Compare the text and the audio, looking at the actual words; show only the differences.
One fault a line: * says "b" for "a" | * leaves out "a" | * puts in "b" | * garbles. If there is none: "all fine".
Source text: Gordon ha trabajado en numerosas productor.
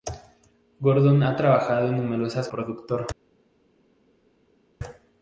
all fine